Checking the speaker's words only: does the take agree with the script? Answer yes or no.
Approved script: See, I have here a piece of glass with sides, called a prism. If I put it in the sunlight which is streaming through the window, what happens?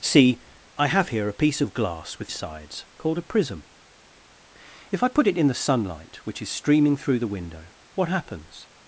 yes